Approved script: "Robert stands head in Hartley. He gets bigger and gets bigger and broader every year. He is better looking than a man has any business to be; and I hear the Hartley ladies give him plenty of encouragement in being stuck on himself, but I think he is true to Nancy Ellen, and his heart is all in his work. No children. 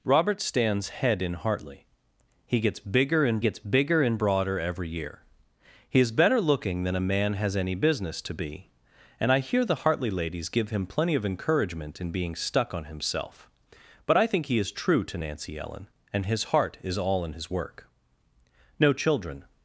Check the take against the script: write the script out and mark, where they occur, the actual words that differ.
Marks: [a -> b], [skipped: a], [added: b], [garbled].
"Robert stands head in Hartley. He gets bigger and gets bigger and broader every year. He is better looking than a man has any business to be; and I hear the Hartley ladies give him plenty of encouragement in being stuck on himself, but I think he is true to Nancy Ellen, and his heart is all in his work. No children.